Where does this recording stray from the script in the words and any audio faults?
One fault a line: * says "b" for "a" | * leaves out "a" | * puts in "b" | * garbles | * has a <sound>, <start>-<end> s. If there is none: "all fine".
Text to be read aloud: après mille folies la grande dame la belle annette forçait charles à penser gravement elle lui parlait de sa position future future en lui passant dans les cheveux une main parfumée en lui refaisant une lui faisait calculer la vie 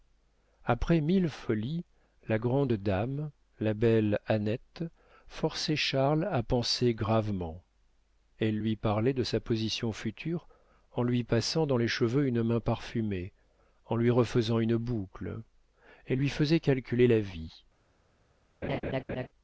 * leaves out "future"
* puts in "boucle elle"
* has a laugh, 18.6-19.3 s